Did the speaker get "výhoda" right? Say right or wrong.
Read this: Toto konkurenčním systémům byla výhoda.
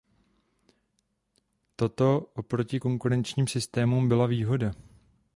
right